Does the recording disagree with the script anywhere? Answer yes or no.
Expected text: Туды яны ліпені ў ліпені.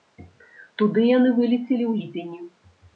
yes